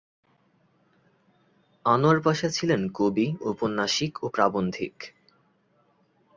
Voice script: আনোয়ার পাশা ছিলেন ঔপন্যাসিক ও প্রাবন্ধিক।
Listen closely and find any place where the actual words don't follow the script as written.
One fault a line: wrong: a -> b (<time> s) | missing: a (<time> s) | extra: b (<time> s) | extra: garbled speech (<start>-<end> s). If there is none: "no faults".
extra: কবি (2.9 s)